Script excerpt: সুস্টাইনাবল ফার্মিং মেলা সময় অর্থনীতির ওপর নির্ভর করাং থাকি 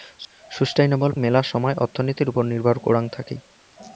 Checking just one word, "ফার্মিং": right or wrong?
wrong